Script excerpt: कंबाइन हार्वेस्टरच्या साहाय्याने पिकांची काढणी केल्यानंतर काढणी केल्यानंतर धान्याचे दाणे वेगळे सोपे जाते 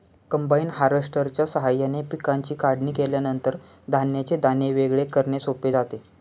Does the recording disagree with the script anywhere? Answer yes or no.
yes